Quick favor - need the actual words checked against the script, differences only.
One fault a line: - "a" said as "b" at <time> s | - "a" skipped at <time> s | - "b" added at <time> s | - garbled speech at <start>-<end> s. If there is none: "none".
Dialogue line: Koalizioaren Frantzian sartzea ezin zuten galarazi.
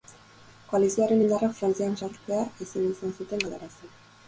- "indarrak" added at 1.2 s
- "izan" added at 2.9 s